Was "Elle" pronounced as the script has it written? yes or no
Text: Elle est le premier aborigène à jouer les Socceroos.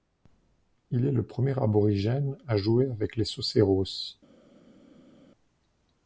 no